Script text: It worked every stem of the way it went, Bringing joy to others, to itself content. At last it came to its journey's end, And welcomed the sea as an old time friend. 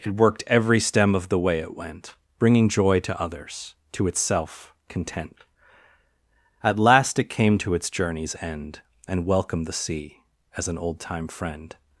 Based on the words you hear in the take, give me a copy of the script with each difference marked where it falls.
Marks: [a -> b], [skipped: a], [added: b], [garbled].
It worked every stem of the way it went, Bringing joy to others, to itself content. At last it came to its journey's end, And welcomed the sea as an old time friend.